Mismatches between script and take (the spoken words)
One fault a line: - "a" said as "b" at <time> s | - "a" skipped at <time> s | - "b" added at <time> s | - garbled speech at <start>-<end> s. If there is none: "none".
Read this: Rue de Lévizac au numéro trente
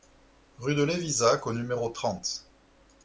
none